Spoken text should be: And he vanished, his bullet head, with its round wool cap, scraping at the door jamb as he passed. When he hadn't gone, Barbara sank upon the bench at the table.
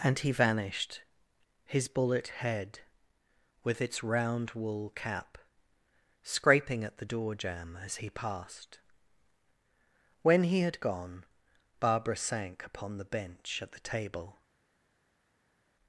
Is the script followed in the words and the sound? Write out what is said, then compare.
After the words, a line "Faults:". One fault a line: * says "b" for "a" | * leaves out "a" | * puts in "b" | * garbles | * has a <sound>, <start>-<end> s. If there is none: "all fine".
And he vanished, his bullet head, with its round wool cap, scraping at the door jamb as he passed. When he had gone, Barbara sank upon the bench at the table.
Faults:
* says "had" for "hadn't"